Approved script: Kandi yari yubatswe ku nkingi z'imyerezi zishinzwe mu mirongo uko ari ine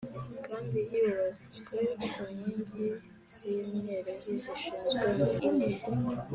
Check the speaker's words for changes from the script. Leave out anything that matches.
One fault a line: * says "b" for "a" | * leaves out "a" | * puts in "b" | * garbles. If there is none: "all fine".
* leaves out "yari"
* leaves out "mirongo uko ari"